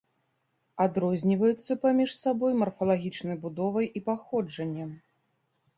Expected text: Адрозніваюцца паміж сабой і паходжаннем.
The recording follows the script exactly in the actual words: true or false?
false